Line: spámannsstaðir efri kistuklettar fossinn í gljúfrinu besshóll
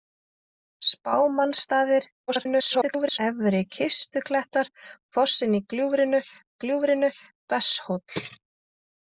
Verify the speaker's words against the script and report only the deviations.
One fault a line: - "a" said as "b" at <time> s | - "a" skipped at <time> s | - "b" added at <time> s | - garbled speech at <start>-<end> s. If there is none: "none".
- garbled speech at 2.3-3.2 s
- "gljúfrinu" added at 6.6 s